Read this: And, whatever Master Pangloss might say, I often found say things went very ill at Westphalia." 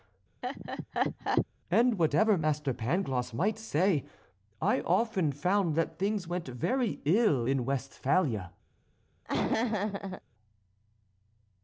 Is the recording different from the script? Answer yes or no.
yes